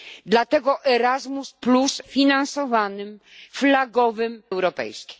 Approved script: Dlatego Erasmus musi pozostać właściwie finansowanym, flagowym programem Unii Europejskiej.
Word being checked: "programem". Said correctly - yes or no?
no